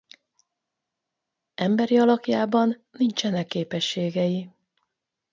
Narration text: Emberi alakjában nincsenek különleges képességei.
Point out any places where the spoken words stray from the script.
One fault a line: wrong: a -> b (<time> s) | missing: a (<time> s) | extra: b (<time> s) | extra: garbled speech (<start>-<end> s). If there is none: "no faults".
missing: különleges (3.5 s)